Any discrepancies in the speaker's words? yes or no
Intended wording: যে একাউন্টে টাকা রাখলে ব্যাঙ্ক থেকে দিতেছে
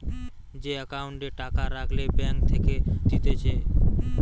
no